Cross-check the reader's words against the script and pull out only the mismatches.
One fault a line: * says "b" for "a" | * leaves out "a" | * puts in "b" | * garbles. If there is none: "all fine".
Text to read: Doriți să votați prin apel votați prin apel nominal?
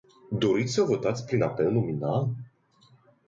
* leaves out "votați prin apel"